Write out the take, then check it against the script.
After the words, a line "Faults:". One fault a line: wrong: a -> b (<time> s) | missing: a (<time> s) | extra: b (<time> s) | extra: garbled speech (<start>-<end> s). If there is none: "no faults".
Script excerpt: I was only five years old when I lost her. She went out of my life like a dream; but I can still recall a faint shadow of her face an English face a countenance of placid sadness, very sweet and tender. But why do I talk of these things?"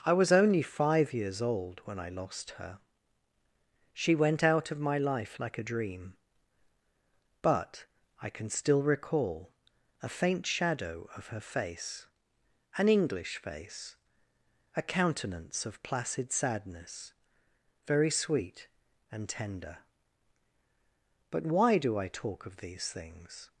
I was only five years old when I lost her. She went out of my life like a dream; but I can still recall a faint shadow of her face an English face a countenance of placid sadness, very sweet and tender. But why do I talk of these things?"
Faults:
no faults